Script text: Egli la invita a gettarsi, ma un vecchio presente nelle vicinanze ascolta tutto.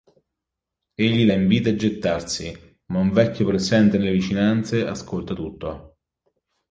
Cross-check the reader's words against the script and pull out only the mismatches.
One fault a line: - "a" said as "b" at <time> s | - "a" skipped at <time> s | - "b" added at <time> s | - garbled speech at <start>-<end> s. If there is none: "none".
none